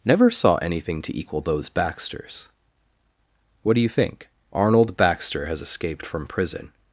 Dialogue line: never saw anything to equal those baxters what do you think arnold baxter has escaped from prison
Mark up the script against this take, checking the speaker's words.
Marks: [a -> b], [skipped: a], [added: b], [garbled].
never saw anything to equal those baxters what do you think arnold baxter has escaped from prison